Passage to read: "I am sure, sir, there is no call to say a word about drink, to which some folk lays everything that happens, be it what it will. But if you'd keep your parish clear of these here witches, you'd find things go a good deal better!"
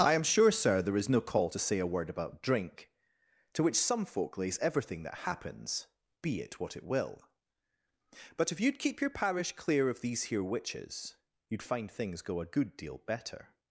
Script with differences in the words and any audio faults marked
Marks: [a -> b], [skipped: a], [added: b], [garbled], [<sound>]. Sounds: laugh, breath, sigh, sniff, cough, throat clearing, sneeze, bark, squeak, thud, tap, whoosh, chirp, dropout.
"I am sure, sir, there is no call to say a word about drink, to which some folk lays everything that happens, be it what it will. But if you'd keep your parish clear of these here witches, you'd find things go a good deal better!"